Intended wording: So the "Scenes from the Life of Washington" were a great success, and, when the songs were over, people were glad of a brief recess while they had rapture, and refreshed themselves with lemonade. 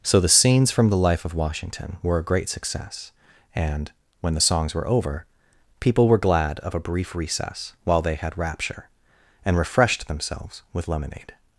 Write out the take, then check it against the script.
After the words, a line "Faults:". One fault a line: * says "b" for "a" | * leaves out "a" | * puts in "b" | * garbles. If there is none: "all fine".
So the "Scenes from the Life of Washington" were a great success, and, when the songs were over, people were glad of a brief recess while they had rapture, and refreshed themselves with lemonade.
Faults:
all fine